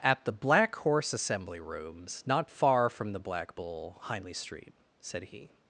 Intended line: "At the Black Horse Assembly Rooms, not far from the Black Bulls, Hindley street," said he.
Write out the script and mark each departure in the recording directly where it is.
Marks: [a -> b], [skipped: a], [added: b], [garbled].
"At the Black Horse Assembly Rooms, not far from the Black [Bulls, -> Bull] Hindley street," said he.